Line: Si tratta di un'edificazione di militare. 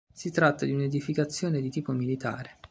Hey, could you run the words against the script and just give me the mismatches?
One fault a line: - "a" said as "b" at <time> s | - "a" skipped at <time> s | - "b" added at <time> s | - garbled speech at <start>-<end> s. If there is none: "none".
- "tipo" added at 1.7 s